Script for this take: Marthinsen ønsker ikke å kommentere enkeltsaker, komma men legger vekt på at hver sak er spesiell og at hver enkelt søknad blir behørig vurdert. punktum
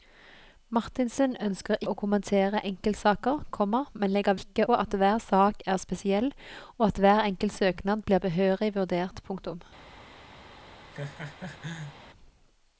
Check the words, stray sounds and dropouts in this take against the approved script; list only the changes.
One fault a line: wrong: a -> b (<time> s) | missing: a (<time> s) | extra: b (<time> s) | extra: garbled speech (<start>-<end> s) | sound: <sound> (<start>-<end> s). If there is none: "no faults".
missing: ikke (1.8 s)
wrong: vekt -> ikke (4.4 s)
sound: laugh (10.9-12.0 s)